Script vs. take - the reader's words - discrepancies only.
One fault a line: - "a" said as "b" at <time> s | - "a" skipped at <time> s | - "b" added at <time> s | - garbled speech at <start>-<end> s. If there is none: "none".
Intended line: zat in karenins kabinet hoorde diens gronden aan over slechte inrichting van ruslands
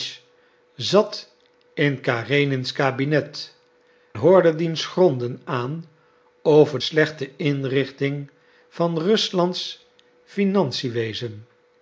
none